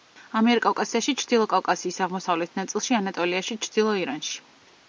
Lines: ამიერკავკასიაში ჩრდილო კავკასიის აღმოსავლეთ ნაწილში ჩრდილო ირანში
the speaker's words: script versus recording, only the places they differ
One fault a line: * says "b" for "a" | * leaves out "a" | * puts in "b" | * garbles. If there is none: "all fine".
* puts in "ანატოლიაში"